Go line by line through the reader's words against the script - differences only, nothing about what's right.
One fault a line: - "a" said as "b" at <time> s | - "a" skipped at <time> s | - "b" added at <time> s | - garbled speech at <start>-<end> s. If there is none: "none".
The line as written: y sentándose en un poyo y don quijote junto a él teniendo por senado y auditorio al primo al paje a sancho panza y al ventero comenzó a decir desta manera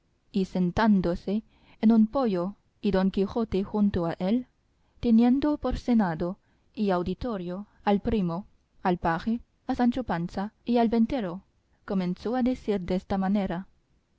none